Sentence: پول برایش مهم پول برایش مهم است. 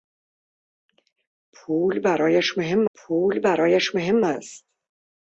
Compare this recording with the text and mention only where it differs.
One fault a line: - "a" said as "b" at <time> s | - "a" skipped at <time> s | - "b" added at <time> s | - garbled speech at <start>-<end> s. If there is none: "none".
none